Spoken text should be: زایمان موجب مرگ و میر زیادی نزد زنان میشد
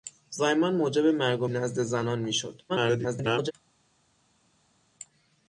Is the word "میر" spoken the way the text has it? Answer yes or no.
no